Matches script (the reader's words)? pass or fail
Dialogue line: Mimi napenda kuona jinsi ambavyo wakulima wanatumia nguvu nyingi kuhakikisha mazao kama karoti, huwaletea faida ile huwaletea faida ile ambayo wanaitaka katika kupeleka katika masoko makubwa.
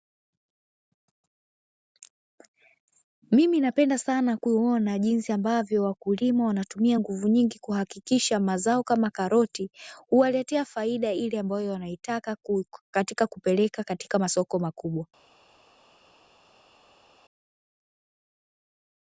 fail